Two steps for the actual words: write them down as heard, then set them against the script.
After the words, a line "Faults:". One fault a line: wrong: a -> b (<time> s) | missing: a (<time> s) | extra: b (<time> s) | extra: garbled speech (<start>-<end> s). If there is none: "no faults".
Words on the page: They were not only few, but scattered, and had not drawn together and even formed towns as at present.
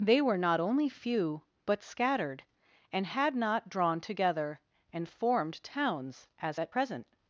They were not only few, but scattered, and had not drawn together and formed towns as at present.
Faults:
missing: even (5.1 s)